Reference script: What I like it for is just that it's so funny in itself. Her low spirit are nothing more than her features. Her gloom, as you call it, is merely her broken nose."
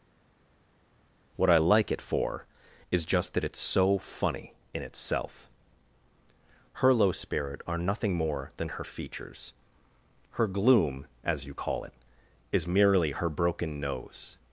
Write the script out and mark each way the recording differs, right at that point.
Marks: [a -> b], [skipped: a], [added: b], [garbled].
What I like it for is just that it's so funny in itself. Her low spirit are nothing more than her features. Her gloom, as you call it, is merely her broken nose."